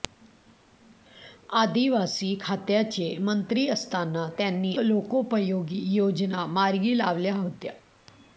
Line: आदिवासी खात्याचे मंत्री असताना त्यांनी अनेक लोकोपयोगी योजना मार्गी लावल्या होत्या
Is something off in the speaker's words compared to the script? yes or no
yes